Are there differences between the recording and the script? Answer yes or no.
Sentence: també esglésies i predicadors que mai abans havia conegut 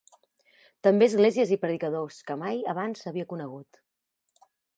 no